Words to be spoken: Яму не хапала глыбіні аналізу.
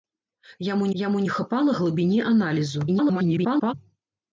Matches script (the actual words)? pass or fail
fail